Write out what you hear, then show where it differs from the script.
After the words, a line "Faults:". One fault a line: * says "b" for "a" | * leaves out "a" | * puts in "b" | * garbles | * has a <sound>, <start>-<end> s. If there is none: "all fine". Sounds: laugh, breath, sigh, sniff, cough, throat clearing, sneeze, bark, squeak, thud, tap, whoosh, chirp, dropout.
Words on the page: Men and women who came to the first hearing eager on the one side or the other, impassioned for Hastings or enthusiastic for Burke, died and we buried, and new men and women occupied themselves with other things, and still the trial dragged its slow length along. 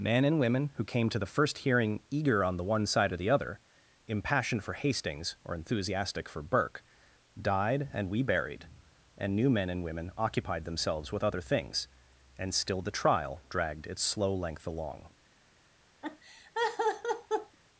Men and women who came to the first hearing eager on the one side or the other, impassioned for Hastings or enthusiastic for Burke, died and we buried, and new men and women occupied themselves with other things, and still the trial dragged its slow length along.
Faults:
* has a laugh, 16.0-17.6 s